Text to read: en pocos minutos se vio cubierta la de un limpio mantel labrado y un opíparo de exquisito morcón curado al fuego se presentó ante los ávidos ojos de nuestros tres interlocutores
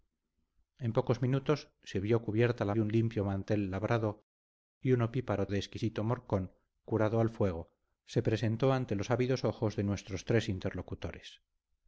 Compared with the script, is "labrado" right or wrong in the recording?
right